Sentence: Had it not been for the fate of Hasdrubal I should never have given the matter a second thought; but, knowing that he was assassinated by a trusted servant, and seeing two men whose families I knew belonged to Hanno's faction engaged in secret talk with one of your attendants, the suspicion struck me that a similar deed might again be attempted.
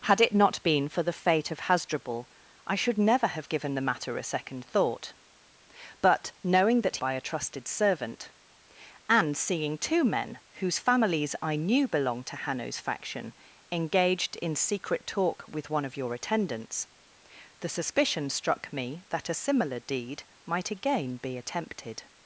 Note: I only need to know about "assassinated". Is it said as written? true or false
false